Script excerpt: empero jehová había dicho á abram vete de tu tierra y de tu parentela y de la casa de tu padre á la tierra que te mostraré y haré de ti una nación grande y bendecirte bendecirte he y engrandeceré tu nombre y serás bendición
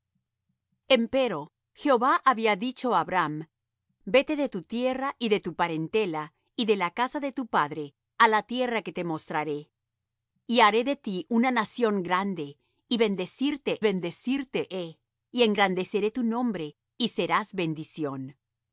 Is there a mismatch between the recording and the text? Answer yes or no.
no